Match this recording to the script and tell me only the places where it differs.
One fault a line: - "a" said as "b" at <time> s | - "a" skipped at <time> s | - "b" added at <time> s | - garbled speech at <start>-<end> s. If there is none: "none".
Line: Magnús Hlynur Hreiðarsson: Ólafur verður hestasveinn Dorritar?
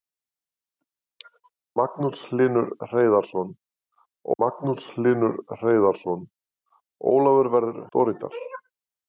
- "magnús Hlynur Hreiðarsson" added at 4.4 s
- "hestasveinn" skipped at 7.8 s